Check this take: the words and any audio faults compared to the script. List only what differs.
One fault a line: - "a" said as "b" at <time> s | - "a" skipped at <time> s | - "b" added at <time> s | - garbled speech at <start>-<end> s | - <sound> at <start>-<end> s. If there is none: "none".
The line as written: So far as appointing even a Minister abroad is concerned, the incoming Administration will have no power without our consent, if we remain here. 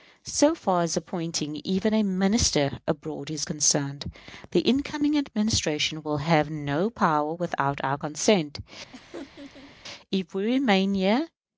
- laugh at 8.9-9.8 s